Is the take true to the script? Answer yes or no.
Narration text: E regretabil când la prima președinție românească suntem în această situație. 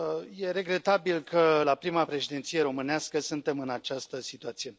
no